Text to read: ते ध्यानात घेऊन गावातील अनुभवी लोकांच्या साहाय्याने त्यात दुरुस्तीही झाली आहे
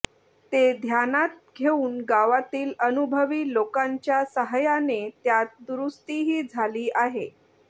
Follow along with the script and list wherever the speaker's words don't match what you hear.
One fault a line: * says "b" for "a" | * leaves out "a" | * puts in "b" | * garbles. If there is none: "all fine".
all fine